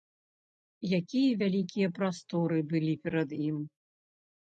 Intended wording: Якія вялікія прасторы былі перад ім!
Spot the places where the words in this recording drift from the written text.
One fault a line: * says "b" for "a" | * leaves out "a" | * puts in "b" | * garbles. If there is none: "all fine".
all fine